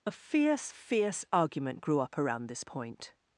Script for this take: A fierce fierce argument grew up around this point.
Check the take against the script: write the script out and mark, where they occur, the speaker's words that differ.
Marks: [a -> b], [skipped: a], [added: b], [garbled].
A fierce fierce argument grew up around this point.